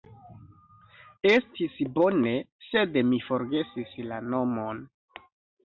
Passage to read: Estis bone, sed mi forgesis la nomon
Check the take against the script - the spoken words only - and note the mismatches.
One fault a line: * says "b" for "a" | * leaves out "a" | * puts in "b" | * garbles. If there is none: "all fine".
all fine